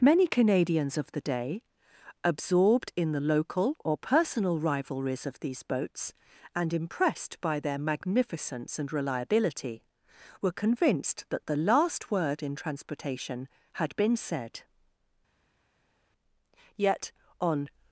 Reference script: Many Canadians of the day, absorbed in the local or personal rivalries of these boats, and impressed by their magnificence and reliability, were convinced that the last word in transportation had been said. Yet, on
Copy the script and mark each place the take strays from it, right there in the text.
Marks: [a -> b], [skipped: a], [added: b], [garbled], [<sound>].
Many Canadians of the day, absorbed in the local or personal rivalries of these boats, and impressed by their magnificence and reliability, were convinced that the last word in transportation had been said. Yet, on